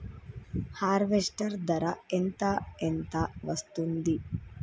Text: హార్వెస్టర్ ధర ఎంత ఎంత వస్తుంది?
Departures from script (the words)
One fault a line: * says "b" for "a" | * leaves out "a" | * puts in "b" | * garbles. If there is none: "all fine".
all fine